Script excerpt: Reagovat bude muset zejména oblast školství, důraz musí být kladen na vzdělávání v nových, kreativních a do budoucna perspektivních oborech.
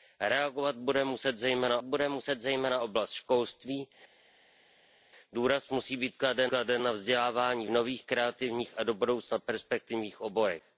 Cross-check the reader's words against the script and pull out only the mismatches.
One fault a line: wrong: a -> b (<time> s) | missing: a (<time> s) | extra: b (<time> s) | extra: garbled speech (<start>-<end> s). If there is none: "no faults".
extra: bude muset zejména (1.8 s)
extra: kladen (6.5 s)